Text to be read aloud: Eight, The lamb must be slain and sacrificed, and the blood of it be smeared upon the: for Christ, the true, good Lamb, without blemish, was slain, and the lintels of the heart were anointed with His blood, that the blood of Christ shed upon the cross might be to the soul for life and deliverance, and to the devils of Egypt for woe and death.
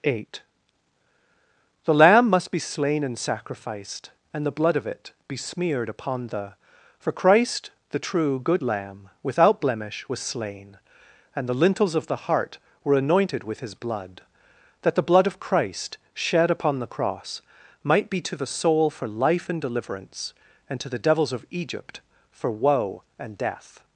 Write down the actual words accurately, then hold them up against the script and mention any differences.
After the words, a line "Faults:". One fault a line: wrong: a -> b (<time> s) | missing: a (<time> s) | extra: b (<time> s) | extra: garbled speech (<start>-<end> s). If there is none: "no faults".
Eight, The lamb must be slain and sacrificed, and the blood of it be smeared upon the: for Christ, the true, good Lamb, without blemish, was slain, and the lintels of the heart were anointed with His blood, that the blood of Christ shed upon the cross might be to the soul for life and deliverance, and to the devils of Egypt for woe and death.
Faults:
no faults